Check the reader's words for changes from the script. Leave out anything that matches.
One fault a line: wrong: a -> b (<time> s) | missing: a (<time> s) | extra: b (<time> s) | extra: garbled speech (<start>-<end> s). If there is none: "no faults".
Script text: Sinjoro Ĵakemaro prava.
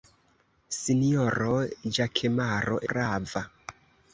no faults